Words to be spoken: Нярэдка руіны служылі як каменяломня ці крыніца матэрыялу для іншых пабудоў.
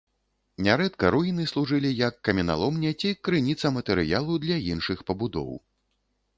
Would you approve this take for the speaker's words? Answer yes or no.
yes